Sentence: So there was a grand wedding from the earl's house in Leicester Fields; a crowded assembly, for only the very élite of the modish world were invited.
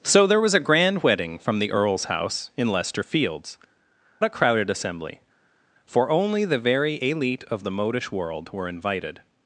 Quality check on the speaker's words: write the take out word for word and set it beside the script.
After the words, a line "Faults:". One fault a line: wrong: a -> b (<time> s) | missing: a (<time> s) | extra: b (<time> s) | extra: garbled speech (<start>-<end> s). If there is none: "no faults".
So there was a grand wedding from the earl's house in Leicester Fields; a crowded assembly, for only the very élite of the modish world were invited.
Faults:
no faults